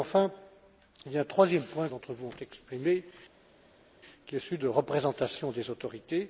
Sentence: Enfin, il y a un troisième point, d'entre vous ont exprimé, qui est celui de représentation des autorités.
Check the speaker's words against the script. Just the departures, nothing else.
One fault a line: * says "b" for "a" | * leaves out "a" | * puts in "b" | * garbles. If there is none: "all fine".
all fine